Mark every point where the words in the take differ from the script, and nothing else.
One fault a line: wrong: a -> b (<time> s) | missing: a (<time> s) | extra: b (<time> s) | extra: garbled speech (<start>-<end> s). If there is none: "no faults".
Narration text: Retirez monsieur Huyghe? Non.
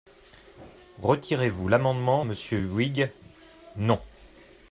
extra: vous l'amendement (1.5 s)